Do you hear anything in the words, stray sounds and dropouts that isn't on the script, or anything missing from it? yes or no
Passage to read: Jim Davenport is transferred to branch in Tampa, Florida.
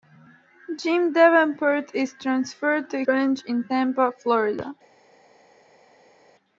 no